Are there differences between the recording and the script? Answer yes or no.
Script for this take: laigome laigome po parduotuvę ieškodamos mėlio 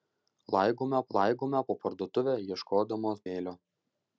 no